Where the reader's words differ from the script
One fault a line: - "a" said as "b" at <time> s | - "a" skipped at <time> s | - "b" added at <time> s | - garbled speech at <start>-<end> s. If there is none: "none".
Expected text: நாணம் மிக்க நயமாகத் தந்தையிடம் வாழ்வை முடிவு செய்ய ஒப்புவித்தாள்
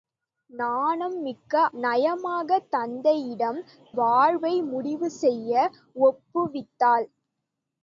none